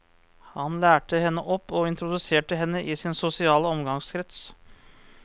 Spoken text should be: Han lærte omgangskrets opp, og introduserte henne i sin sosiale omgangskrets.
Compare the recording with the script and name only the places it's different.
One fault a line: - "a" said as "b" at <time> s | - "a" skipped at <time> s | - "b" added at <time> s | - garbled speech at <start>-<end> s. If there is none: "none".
- "omgangskrets" said as "henne" at 1.2 s